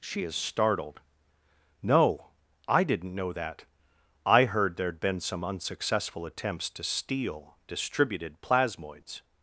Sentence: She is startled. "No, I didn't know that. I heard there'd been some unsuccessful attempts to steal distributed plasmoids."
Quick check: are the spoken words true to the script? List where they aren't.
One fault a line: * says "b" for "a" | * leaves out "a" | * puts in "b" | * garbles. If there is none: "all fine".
all fine